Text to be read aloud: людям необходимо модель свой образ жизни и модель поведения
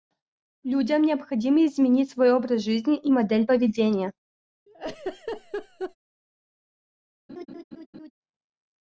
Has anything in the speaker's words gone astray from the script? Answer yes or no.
yes